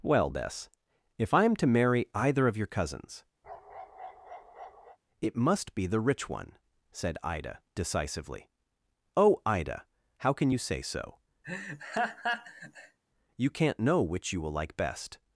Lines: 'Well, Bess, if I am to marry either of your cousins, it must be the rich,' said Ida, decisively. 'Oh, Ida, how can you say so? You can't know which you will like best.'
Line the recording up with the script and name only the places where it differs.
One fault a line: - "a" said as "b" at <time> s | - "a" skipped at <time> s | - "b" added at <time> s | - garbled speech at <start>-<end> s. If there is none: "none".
- "one" added at 6.3 s